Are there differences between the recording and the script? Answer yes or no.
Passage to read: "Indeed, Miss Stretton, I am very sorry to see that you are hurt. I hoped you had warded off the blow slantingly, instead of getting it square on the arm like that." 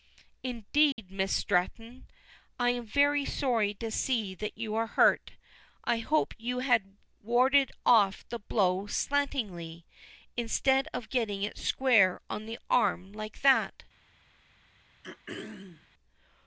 no